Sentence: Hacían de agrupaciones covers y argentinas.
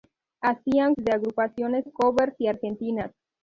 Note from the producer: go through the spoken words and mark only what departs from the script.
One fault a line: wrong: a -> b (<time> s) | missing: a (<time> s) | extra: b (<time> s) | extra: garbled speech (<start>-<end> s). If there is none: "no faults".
no faults